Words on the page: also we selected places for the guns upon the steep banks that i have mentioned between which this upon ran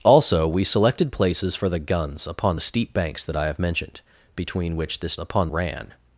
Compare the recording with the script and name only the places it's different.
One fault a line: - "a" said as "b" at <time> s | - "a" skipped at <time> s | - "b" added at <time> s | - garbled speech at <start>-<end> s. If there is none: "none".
none